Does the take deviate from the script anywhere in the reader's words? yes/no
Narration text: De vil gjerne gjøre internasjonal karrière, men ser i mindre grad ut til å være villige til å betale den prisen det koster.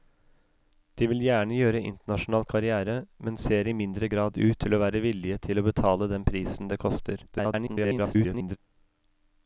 yes